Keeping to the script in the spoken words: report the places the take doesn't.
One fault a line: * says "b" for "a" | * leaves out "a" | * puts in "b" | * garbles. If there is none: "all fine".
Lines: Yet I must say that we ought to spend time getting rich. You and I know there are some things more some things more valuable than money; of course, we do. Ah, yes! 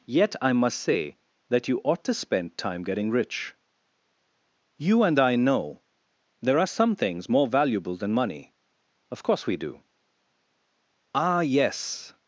* says "you" for "we"
* leaves out "some things more"